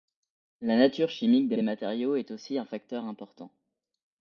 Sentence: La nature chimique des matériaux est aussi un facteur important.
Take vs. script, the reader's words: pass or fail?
fail